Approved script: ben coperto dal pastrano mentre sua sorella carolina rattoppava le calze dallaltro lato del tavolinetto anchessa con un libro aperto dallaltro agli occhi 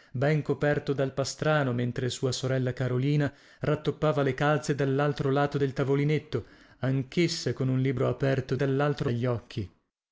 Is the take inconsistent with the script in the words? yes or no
no